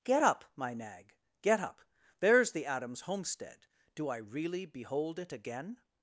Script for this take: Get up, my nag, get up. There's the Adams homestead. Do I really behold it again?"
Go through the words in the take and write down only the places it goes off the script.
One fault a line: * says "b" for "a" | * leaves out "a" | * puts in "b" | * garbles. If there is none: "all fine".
all fine